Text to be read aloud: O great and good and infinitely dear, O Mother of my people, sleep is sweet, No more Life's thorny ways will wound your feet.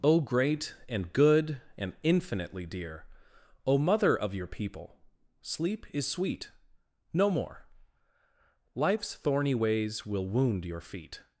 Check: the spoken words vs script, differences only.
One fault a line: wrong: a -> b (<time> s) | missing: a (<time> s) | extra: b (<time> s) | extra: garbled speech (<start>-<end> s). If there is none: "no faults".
wrong: my -> your (4.3 s)